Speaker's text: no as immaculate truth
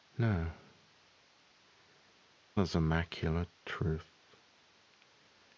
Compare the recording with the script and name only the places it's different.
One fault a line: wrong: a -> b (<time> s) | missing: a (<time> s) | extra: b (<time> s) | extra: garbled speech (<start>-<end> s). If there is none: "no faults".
no faults